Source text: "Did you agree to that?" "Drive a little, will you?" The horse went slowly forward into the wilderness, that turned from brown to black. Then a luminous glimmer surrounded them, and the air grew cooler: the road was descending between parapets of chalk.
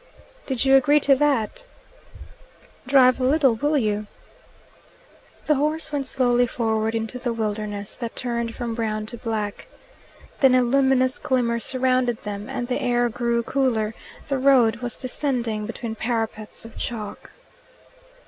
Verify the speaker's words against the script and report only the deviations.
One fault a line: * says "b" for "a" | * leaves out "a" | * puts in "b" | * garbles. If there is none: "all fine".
all fine